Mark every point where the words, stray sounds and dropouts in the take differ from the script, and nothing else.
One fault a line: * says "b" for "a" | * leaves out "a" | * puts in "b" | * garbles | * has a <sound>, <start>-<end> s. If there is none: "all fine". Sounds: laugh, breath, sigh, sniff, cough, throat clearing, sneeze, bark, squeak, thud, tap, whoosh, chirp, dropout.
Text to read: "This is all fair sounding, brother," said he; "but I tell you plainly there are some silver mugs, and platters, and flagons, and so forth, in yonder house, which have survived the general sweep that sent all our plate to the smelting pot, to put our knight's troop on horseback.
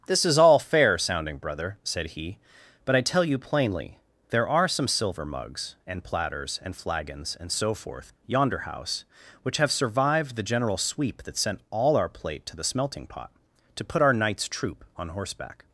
* leaves out "in"